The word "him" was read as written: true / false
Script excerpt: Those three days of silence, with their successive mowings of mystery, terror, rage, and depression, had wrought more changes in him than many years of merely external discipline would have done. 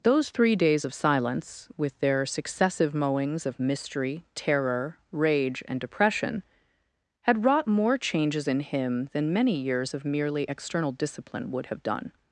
true